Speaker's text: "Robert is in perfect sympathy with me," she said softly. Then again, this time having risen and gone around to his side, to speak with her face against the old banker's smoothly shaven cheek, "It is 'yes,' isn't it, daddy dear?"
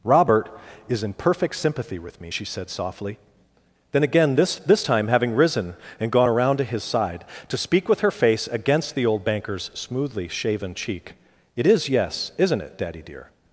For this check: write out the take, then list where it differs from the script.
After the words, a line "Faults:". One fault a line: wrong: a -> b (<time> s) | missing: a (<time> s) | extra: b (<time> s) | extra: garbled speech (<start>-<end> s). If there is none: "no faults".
"Robert is in perfect sympathy with me," she said softly. Then again, this this time having risen and gone around to his side, to speak with her face against the old banker's smoothly shaven cheek, "It is 'yes,' isn't it, daddy dear?"
Faults:
extra: this (4.6 s)